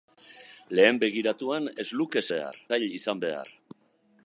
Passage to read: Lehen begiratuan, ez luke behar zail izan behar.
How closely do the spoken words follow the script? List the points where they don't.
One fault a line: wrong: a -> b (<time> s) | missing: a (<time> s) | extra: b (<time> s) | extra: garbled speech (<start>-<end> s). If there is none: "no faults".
no faults